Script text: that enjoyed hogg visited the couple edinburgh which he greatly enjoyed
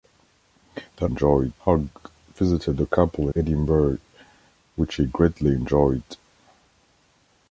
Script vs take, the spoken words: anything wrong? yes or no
no